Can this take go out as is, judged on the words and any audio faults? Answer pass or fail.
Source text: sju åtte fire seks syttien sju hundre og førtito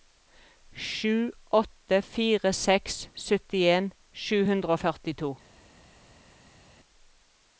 pass